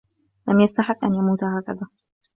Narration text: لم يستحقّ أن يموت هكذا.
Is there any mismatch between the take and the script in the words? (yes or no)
no